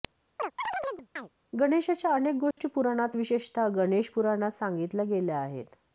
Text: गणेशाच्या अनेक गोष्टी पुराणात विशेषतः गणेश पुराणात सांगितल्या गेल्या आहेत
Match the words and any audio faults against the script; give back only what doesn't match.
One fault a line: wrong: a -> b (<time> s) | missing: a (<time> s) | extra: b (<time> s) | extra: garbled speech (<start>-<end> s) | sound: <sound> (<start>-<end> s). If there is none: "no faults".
sound: chirp (0.4-1.3 s)
sound: dropout (2.5-2.6 s)